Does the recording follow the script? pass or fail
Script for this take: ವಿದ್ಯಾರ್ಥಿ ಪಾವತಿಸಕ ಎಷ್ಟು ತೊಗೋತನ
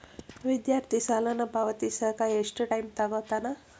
fail